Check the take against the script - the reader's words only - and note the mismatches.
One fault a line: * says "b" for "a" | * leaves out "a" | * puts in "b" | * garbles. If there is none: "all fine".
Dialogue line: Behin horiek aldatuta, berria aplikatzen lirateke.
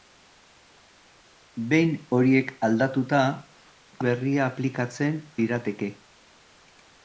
all fine